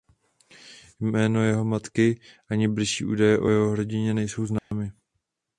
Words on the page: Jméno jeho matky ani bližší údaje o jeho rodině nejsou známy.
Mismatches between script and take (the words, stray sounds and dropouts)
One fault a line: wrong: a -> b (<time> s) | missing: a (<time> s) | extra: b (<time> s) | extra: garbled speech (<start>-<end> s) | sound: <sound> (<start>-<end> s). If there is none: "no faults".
sound: dropout (4.6-4.7 s)